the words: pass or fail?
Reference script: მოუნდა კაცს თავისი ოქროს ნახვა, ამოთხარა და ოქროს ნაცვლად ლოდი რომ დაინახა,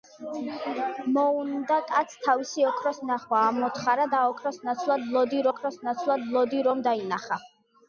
fail